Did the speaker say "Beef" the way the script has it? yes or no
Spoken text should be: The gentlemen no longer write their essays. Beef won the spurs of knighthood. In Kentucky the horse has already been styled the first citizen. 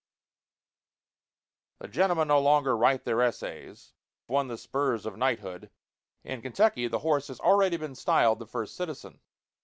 no